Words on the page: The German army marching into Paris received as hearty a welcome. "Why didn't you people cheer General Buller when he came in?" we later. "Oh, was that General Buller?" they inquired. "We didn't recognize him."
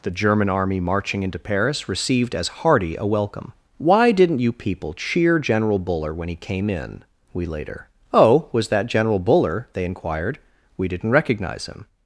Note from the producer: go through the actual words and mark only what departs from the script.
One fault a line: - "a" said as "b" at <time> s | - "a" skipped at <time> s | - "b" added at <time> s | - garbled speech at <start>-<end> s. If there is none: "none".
none